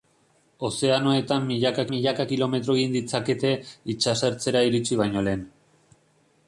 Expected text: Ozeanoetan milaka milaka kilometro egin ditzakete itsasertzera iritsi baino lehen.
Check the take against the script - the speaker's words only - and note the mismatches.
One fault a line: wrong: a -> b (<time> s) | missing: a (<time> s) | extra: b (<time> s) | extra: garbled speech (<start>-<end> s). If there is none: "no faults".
no faults